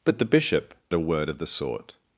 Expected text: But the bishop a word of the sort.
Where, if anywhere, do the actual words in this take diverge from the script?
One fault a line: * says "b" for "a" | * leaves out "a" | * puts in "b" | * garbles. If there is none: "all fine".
all fine